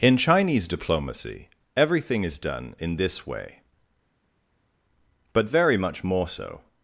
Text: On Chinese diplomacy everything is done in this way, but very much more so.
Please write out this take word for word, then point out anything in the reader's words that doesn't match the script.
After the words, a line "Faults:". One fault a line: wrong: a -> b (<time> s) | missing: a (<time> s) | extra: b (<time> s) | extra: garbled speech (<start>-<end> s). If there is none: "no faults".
In Chinese diplomacy everything is done in this way, but very much more so.
Faults:
wrong: On -> In (0.0 s)